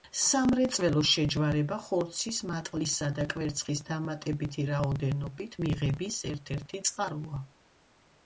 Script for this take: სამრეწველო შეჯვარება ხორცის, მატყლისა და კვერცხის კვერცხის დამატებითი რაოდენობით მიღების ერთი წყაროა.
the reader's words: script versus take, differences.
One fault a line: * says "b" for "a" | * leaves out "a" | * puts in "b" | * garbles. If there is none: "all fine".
* leaves out "კვერცხის"
* puts in "ერთ"